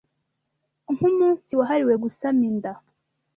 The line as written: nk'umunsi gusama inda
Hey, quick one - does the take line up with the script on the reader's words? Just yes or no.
no